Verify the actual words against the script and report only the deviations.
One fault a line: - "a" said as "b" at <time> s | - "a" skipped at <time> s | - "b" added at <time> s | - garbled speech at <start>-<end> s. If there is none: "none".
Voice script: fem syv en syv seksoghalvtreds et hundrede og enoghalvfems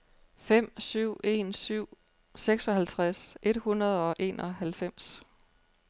none